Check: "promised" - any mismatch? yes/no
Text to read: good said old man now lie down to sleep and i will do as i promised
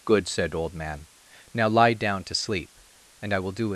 yes